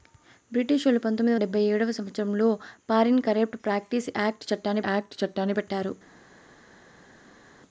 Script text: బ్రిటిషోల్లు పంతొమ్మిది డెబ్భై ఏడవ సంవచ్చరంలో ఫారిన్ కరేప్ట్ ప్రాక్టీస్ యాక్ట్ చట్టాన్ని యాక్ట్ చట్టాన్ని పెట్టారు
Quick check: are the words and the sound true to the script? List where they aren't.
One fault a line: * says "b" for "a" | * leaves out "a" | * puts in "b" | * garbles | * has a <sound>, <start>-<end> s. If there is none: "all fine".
all fine